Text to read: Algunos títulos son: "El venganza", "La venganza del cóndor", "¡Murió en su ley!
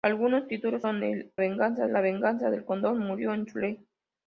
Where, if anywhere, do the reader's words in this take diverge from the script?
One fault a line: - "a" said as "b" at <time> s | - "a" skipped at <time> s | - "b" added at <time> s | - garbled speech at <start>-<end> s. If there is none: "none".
none